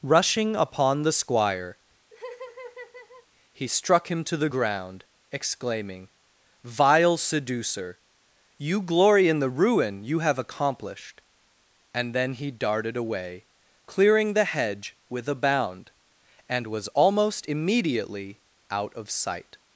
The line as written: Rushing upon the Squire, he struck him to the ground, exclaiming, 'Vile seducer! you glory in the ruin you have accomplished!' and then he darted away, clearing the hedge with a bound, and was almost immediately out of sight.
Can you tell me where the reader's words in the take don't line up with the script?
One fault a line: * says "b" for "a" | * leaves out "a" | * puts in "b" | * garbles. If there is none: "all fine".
all fine